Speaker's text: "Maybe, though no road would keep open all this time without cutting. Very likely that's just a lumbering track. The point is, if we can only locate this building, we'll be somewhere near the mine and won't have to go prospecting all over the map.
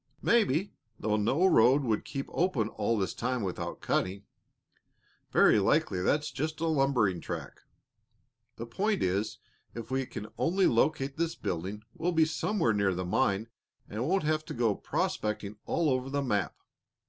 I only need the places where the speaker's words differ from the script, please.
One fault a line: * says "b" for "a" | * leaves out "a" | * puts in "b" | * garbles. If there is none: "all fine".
all fine